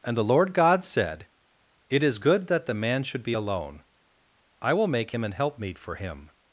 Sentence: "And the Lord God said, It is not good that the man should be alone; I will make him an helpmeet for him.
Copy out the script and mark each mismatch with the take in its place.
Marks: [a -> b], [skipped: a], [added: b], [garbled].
"And the Lord God said, It is [skipped: not] good that the man should be alone; I will make him an helpmeet for him.